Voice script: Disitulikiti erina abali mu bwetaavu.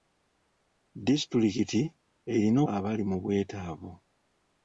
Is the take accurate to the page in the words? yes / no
yes